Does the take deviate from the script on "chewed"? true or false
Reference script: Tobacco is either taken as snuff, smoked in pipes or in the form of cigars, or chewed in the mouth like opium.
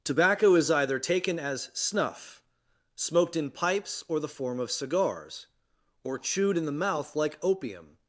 false